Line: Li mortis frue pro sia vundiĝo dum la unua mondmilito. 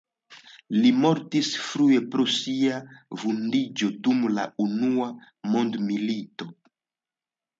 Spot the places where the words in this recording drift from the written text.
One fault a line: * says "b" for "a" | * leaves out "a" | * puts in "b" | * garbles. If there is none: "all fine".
all fine